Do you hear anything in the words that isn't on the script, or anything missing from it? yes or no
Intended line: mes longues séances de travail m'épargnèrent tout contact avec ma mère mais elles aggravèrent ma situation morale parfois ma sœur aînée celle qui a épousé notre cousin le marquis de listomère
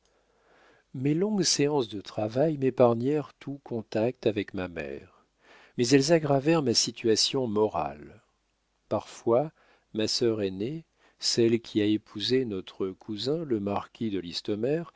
no